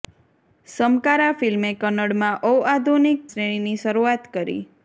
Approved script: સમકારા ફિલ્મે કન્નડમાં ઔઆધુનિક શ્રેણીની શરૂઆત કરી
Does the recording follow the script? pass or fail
pass